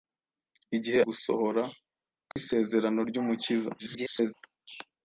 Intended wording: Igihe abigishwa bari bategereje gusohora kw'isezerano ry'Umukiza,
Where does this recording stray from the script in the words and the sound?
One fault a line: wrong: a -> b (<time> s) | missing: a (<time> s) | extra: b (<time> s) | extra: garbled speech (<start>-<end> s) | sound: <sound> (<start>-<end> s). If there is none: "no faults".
missing: abigishwa bari bategereje (1.0 s)
sound: dropout (2.3-2.4 s)
extra: garbled speech (3.8-4.3 s)